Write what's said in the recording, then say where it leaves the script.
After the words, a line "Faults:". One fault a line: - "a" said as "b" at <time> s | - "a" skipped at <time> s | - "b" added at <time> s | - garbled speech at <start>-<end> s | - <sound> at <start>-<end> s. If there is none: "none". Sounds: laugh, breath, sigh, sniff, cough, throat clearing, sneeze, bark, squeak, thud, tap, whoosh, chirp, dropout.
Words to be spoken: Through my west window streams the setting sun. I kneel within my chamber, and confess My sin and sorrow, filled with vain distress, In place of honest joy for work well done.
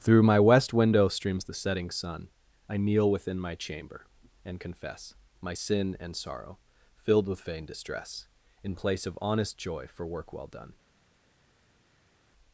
Through my west window streams the setting sun. I kneel within my chamber, and confess My sin and sorrow, filled with vain distress, In place of honest joy for work well done.
Faults:
none